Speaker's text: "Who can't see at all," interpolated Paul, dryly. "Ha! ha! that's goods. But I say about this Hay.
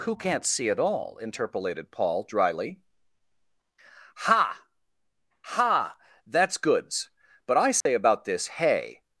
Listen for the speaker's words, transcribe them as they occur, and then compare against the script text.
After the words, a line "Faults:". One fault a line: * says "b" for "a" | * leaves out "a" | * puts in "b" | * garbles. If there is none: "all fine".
"Who can't see at all," interpolated Paul, dryly. "Ha! ha! that's goods. But I say about this Hay.
Faults:
all fine